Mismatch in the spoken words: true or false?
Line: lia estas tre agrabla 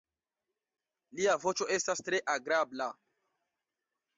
true